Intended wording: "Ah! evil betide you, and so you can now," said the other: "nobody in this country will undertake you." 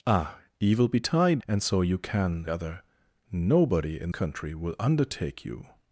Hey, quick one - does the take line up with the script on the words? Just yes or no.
no